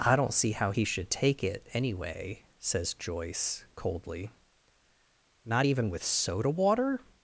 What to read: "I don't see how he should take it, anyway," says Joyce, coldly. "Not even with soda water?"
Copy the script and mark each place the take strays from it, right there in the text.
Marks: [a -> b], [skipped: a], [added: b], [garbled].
"I don't see how he should take it, anyway," says Joyce, coldly. "Not even with soda water?"